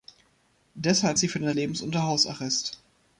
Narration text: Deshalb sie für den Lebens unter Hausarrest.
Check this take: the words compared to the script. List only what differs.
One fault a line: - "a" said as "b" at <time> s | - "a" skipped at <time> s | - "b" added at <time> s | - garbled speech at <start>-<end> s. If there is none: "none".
none